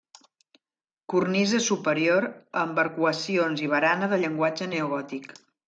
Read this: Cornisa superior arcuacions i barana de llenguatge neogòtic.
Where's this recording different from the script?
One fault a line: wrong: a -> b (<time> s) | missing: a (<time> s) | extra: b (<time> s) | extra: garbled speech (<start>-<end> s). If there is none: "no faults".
extra: amb (2.6 s)